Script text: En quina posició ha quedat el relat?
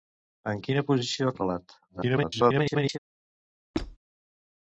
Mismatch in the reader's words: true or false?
true